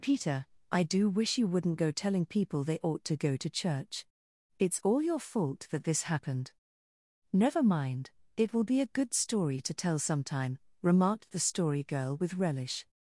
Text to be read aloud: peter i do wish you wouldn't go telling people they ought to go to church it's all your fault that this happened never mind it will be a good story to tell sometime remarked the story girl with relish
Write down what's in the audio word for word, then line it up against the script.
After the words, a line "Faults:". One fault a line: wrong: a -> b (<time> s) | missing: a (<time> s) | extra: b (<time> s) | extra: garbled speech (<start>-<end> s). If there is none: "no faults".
peter i do wish you wouldn't go telling people they ought to go to church it's all your fault that this happened never mind it will be a good story to tell sometime remarked the story girl with relish
Faults:
no faults